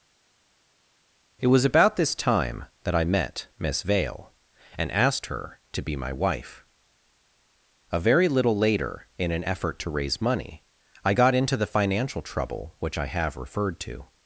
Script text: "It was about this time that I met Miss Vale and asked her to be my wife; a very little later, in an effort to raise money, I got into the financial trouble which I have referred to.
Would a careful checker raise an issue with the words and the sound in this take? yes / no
no